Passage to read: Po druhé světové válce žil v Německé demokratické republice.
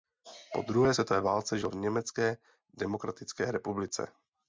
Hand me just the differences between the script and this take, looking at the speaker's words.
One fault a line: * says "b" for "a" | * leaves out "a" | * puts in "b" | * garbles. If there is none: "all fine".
all fine